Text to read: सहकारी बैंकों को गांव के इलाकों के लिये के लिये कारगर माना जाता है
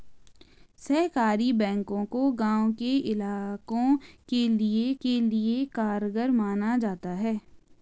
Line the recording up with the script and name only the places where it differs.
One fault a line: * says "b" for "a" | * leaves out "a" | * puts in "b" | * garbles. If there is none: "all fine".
all fine